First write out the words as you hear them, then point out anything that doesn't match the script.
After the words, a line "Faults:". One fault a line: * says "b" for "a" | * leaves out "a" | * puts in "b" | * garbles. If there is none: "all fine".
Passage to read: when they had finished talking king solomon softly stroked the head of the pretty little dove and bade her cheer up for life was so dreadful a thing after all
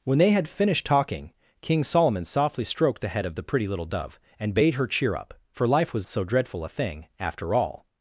when they had finished talking king solomon softly stroked the head of the pretty little dove and bade her cheer up for life was so dreadful a thing after all
Faults:
all fine